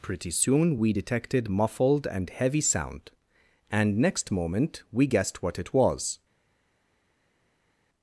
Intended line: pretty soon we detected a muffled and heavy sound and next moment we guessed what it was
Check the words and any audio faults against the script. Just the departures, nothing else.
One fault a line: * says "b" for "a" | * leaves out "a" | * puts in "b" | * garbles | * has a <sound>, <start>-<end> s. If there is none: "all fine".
* leaves out "a"